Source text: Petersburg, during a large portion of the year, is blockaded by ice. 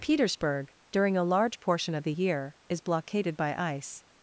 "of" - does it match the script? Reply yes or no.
yes